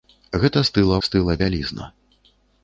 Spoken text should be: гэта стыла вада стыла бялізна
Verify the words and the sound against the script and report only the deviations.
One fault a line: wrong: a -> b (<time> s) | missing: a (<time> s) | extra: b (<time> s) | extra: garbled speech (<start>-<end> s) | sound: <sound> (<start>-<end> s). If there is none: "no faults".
missing: вада (1.0 s)